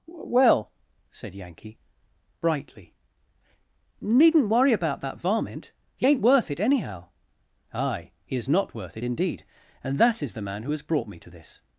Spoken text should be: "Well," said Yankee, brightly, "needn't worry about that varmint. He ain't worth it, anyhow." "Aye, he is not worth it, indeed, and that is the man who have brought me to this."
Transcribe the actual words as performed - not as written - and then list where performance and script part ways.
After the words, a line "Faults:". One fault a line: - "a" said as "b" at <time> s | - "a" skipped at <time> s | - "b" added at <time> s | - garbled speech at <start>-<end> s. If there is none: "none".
"Well," said Yankee, brightly, "needn't worry about that varmint. He ain't worth it, anyhow." "Aye, he is not worth it, indeed, and that is the man who has brought me to this."
Faults:
- "have" said as "has" at 10.7 s